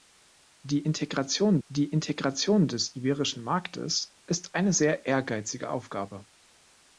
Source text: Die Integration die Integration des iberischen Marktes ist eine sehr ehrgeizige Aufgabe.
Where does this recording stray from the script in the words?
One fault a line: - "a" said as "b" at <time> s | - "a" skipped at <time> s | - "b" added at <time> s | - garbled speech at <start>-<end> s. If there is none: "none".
none